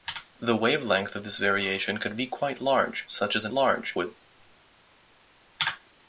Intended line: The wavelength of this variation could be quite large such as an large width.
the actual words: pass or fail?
pass